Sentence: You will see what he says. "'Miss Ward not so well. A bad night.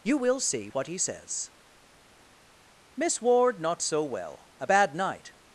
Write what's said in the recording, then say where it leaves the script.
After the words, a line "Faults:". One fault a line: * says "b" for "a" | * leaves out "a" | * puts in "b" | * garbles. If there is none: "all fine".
You will see what he says. "'Miss Ward not so well. A bad night.
Faults:
all fine